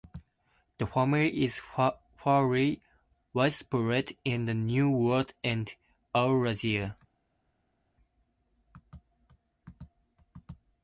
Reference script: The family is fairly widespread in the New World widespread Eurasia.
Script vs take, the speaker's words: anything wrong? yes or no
yes